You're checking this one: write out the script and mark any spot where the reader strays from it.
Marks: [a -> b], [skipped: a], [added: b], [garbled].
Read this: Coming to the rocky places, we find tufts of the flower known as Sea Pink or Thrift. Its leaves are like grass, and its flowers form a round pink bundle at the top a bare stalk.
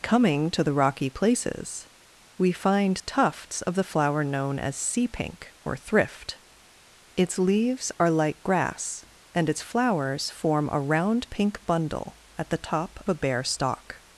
Coming to the rocky places, we find tufts of the flower known as Sea Pink or Thrift. Its leaves are like grass, and its flowers form a round pink bundle at the top a bare stalk.